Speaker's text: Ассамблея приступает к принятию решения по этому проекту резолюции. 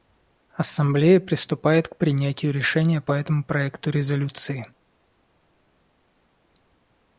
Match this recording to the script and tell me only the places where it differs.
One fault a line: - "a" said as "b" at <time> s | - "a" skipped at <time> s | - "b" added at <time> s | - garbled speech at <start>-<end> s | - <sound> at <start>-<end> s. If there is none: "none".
none